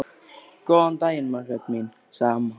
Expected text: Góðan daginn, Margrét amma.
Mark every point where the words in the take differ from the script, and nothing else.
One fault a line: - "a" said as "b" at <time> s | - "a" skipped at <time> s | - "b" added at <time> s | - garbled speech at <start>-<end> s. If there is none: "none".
- "mín sagði" added at 1.7 s